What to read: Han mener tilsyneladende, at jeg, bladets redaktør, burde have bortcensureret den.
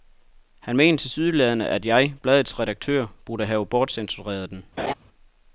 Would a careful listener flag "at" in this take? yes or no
no